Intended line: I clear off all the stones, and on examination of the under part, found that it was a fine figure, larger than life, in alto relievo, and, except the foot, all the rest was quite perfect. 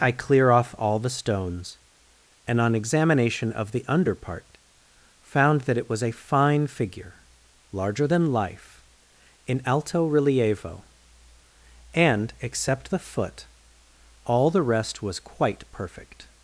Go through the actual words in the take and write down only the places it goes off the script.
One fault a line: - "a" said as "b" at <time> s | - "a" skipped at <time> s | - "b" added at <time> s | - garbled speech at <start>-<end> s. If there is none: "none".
none